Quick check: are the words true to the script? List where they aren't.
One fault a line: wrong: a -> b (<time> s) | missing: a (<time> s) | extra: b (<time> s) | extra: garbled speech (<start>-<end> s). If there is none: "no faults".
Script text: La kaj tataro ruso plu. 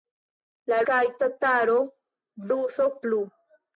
no faults